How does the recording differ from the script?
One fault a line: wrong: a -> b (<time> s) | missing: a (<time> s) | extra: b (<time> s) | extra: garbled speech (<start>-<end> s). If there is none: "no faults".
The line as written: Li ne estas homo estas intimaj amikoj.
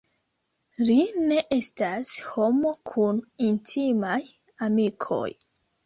wrong: estas -> kun (3.0 s)